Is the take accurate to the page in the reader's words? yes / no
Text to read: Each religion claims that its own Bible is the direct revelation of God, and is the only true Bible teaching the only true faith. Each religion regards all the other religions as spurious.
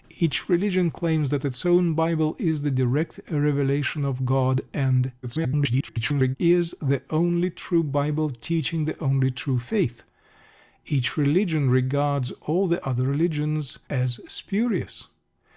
no